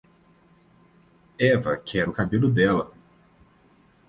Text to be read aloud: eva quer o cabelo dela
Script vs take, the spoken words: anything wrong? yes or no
no